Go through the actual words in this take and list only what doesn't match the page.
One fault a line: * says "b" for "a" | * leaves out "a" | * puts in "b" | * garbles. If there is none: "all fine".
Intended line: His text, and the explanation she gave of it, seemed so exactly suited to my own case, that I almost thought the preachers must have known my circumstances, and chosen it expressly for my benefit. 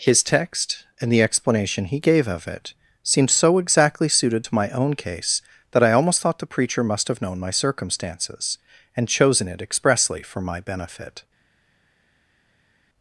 * says "he" for "she"
* says "preacher" for "preachers"